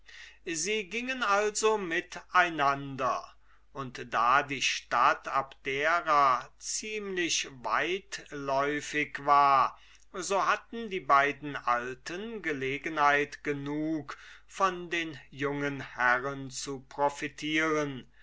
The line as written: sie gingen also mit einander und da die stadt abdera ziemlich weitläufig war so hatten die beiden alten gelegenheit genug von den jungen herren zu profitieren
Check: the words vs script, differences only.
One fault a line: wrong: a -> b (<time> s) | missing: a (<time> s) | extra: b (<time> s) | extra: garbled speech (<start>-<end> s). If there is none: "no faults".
no faults